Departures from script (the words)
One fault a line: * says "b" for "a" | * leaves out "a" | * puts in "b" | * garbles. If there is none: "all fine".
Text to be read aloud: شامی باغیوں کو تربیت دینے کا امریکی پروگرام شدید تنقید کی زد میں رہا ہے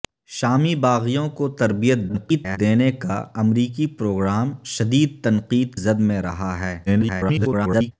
* garbles
* leaves out "کی"
* garbles